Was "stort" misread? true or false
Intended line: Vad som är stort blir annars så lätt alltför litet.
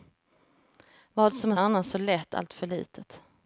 true